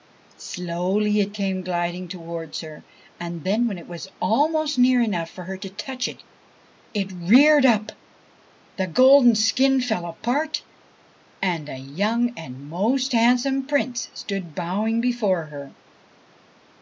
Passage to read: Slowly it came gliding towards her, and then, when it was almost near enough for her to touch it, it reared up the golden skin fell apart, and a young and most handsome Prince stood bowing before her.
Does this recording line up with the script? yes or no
yes